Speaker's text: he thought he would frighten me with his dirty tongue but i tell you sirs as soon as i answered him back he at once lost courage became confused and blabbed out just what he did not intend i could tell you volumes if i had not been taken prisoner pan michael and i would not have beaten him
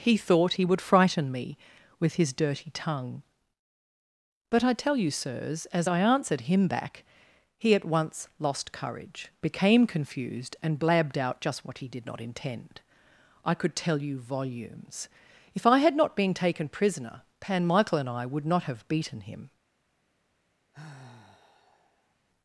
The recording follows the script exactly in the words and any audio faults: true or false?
false